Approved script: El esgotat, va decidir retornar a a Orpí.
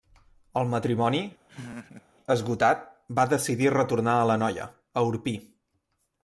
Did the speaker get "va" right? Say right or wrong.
right